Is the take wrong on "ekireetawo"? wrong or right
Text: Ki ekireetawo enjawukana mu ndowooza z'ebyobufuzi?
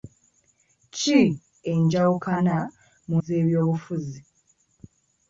wrong